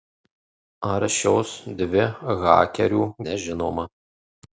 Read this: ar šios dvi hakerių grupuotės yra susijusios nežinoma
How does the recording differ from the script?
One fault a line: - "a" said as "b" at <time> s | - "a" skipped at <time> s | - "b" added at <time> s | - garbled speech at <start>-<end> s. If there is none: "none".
- "grupuotės yra susijusios" skipped at 3.0 s